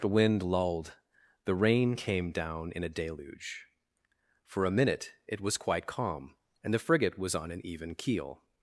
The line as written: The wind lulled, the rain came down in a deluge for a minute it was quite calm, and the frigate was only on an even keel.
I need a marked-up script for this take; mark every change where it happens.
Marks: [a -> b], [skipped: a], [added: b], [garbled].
The wind lulled, the rain came down in a deluge for a minute it was quite calm, and the frigate was [skipped: only] on an even keel.